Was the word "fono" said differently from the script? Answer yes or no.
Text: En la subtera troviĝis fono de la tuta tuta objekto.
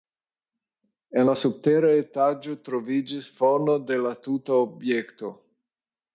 no